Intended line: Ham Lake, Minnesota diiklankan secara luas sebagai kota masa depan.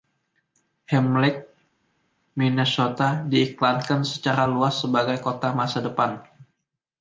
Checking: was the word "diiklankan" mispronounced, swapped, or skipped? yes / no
no